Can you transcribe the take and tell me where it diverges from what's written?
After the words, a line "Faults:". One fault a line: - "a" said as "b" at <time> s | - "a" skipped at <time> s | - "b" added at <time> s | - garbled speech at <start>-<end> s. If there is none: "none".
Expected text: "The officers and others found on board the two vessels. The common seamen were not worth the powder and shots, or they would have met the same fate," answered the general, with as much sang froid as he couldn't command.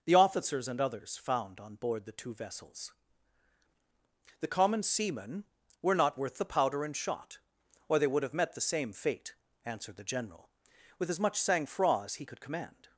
"The officers and others found on board the two vessels. The common seamen were not worth the powder and shot, or they would have met the same fate," answered the general, with as much sang froid as he could command.
Faults:
- "shots" said as "shot" at 7.0 s
- "couldn't" said as "could" at 12.2 s